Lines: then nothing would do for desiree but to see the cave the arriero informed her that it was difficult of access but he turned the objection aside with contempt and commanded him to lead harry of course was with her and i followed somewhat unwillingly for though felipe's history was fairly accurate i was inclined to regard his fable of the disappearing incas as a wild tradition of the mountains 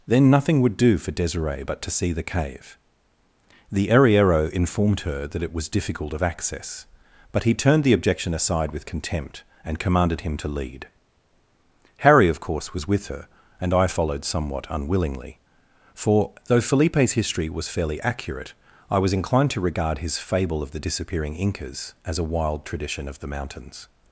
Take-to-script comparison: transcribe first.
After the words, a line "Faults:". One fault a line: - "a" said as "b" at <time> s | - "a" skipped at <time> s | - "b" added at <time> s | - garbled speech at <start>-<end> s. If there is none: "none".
then nothing would do for desiree but to see the cave the arriero informed her that it was difficult of access but he turned the objection aside with contempt and commanded him to lead harry of course was with her and i followed somewhat unwillingly for though felipe's history was fairly accurate i was inclined to regard his fable of the disappearing incas as a wild tradition of the mountains
Faults:
none